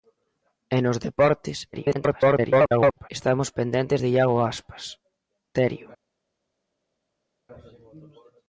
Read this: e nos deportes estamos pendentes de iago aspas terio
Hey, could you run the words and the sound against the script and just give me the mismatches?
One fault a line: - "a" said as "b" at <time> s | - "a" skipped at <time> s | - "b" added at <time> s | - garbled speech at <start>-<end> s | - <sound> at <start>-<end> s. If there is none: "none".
- garbled speech at 1.7-3.1 s